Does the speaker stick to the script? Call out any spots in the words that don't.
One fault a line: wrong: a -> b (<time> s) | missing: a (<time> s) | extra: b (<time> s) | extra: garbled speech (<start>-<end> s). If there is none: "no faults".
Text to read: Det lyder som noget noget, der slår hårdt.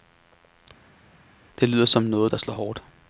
missing: noget (2.3 s)